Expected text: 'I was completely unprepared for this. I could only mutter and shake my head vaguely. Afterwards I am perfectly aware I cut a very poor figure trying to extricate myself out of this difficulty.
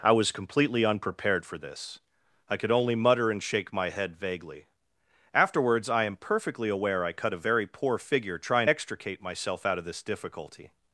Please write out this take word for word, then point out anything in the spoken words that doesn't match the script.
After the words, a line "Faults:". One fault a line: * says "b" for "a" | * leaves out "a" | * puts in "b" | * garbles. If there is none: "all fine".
'I was completely unprepared for this. I could only mutter and shake my head vaguely. Afterwards I am perfectly aware I cut a very poor figure trying extricate myself out of this difficulty.
Faults:
* leaves out "to"